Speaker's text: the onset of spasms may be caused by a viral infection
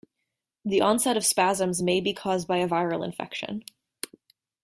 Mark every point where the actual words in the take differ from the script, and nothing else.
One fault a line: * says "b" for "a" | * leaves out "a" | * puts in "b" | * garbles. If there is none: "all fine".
all fine